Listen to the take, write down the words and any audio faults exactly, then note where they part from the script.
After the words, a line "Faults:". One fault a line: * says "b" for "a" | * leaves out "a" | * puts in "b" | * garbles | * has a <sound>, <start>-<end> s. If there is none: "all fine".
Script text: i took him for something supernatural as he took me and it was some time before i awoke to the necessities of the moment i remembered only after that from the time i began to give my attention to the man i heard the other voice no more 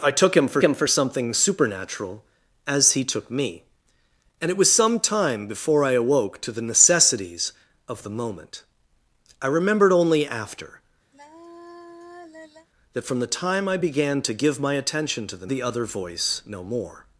i took him for him for something supernatural as he took me and it was some time before i awoke to the necessities of the moment i remembered only after that from the time i began to give my attention to the the other voice no more
Faults:
* puts in "him for"
* has a sigh, 11.1-12.7 s
* leaves out "man i heard"